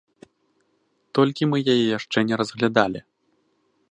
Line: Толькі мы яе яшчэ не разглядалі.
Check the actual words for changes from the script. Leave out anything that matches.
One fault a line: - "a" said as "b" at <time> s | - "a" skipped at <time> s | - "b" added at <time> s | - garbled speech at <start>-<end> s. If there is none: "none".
none